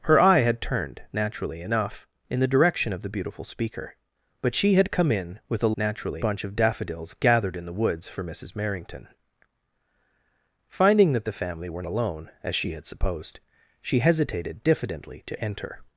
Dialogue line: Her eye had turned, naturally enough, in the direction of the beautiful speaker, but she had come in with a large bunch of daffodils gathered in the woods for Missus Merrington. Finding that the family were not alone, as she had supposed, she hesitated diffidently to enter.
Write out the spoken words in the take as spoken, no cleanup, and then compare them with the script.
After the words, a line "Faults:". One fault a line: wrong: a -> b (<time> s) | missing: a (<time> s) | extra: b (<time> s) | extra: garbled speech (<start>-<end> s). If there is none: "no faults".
Her eye had turned, naturally enough, in the direction of the beautiful speaker, but she had come in with a naturally bunch of daffodils gathered in the woods for Missus Merrington. Finding that the family were alone, as she had supposed, she hesitated diffidently to enter.
Faults:
wrong: large -> naturally (5.8 s)
missing: not (11.8 s)